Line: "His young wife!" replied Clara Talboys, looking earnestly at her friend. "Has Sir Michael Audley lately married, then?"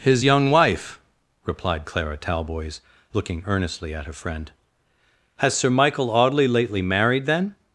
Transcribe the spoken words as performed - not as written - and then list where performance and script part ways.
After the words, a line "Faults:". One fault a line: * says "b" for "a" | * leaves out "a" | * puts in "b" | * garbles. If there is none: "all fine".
"His young wife!" replied Clara Talboys, looking earnestly at her friend. "Has Sir Michael Audley lately married, then?"
Faults:
all fine